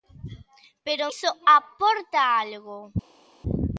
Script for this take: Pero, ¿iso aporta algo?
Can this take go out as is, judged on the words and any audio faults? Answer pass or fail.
pass